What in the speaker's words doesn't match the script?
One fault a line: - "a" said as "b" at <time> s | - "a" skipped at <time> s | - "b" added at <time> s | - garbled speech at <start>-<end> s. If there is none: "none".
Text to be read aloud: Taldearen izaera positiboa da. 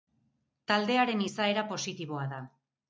none